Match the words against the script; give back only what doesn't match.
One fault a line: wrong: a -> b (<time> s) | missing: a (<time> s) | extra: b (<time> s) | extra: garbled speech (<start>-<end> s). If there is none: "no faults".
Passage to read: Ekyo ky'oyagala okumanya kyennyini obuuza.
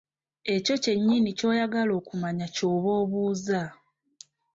extra: kyennyini (0.8 s)
wrong: kyennyini -> ky'oba (2.5 s)